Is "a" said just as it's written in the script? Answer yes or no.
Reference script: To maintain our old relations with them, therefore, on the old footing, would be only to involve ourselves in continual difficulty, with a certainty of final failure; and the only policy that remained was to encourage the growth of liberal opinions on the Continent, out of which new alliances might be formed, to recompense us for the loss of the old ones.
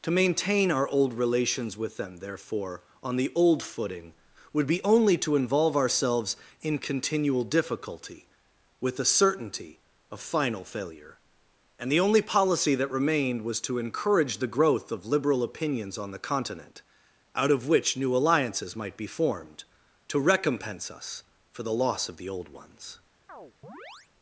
no